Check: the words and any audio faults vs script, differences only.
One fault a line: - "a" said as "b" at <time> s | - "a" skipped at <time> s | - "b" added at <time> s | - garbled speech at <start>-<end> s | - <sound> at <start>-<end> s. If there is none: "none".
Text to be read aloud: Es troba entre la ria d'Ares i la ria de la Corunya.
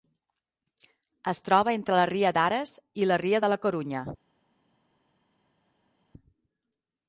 none